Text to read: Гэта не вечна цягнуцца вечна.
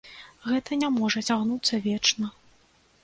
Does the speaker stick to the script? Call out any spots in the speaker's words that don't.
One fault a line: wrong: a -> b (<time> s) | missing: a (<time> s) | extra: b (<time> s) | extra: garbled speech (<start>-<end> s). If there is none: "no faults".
wrong: вечна -> можа (1.0 s)